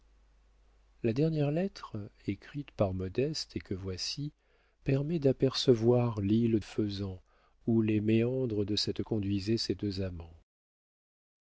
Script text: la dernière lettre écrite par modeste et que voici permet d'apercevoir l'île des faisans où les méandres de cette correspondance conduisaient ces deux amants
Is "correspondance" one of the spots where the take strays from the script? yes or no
yes